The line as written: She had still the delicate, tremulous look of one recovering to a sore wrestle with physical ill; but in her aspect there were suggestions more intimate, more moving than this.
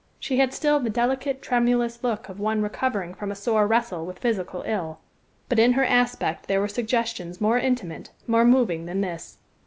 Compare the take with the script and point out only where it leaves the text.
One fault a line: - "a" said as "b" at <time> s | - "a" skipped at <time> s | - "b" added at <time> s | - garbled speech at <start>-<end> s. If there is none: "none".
- "to" said as "from" at 3.1 s